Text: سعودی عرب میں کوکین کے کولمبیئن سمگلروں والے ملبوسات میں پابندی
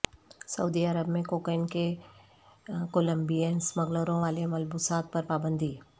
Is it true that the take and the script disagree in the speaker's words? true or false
true